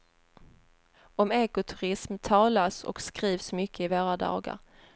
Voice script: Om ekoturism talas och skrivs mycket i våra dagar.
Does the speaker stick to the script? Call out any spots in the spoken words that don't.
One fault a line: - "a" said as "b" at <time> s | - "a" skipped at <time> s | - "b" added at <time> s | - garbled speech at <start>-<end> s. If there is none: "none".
none